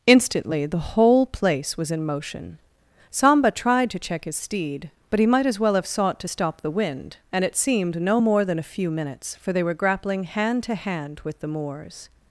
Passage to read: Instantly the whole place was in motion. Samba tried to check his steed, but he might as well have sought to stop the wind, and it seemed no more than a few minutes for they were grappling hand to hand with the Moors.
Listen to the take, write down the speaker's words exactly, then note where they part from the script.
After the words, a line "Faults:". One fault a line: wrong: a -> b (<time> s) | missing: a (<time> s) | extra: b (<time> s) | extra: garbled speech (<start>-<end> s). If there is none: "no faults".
Instantly the whole place was in motion. Samba tried to check his steed, but he might as well have sought to stop the wind, and it seemed no more than a few minutes for they were grappling hand to hand with the Moors.
Faults:
no faults